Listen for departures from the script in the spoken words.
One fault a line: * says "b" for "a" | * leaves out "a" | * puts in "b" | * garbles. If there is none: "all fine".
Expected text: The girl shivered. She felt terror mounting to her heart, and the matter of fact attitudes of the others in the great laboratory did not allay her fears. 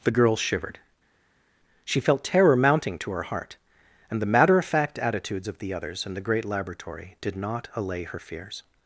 all fine